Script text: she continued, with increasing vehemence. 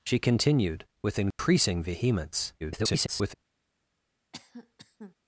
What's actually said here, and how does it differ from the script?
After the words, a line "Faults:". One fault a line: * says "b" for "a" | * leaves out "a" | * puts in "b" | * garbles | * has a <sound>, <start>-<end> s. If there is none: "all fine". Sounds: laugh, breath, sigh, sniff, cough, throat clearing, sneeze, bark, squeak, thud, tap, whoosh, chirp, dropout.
she continued, with increasing vehemence. [garbled]
Faults:
* has a dropout, 1.3-1.4 s
* garbles
* has a cough, 4.3-5.1 s